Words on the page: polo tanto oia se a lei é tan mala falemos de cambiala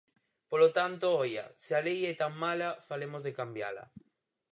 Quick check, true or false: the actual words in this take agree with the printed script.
true